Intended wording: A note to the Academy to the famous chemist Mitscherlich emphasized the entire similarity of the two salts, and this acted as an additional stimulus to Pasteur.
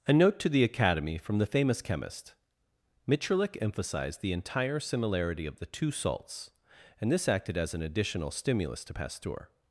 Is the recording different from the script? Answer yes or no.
yes